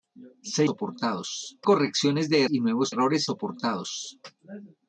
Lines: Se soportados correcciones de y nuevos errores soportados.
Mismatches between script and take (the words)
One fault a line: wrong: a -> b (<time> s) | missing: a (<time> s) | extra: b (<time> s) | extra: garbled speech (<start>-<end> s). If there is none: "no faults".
no faults